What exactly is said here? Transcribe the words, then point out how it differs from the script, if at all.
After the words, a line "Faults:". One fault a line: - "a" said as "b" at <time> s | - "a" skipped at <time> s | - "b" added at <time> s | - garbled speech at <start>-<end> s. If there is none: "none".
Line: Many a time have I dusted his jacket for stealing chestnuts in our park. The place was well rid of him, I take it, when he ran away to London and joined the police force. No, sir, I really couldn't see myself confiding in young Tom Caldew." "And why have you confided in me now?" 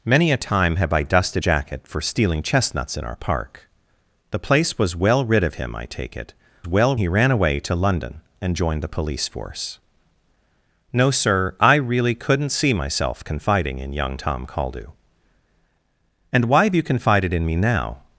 Many a time have I dusted jacket for stealing chestnuts in our park. The place was well rid of him, I take it, well he ran away to London and joined the police force. No, sir, I really couldn't see myself confiding in young Tom Caldew." "And why have you confided in me now?"
Faults:
- "his" skipped at 1.4 s
- "when" said as "well" at 6.7 s